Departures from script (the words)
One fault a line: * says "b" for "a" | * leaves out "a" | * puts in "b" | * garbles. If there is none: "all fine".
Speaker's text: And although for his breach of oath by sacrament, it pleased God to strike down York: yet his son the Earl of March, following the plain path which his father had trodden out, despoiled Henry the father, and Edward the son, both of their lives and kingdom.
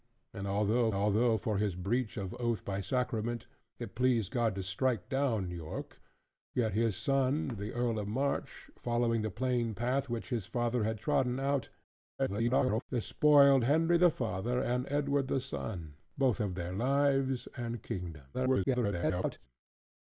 * puts in "although"
* garbles
* garbles